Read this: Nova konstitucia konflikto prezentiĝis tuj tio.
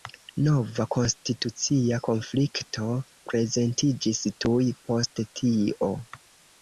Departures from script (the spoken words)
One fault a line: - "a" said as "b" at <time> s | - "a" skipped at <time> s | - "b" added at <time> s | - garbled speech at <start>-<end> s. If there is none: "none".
- "post" added at 4.9 s